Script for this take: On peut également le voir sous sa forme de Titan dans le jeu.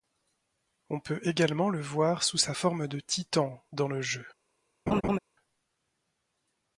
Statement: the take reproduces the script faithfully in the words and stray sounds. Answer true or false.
false